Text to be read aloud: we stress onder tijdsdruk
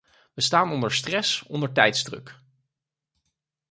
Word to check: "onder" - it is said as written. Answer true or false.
true